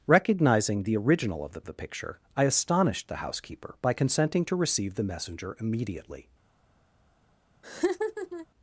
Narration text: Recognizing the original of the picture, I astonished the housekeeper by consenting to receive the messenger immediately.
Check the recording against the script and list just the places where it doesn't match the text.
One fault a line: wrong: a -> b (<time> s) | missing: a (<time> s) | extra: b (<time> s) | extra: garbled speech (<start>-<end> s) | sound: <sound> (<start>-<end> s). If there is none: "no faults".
extra: the (1.6 s)
sound: laugh (7.6-8.5 s)